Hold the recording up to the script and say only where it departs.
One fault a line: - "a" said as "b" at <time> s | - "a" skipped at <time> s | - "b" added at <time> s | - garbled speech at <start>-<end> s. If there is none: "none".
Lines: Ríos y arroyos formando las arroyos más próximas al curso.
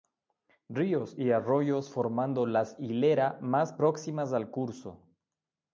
- "arroyos" said as "hilera" at 2.8 s